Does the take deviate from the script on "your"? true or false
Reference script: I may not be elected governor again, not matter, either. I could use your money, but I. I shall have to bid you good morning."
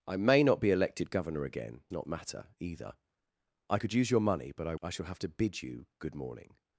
false